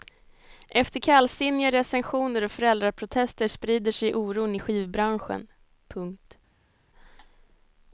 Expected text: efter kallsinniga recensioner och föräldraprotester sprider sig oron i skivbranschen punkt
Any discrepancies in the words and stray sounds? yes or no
no